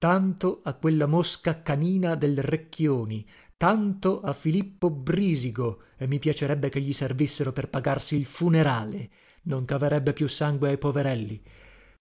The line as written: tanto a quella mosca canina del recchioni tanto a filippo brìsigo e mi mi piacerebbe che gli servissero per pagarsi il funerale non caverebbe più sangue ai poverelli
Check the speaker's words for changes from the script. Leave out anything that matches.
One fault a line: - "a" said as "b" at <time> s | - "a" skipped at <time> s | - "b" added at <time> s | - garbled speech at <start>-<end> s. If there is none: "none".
- "mi" skipped at 6.2 s